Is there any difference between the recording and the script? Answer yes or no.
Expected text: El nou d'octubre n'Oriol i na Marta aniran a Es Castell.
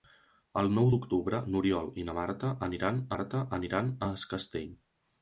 yes